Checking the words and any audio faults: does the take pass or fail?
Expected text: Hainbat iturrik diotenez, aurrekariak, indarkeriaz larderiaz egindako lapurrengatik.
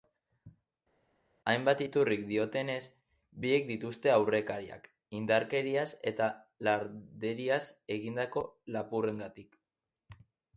fail